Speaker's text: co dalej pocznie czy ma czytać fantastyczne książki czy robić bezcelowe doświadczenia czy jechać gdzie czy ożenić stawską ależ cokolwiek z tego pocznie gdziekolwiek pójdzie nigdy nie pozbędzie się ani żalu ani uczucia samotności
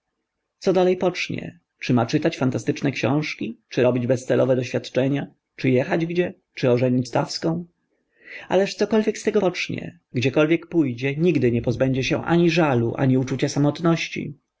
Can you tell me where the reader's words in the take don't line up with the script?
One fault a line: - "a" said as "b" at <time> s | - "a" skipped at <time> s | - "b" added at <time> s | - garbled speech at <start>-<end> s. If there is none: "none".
none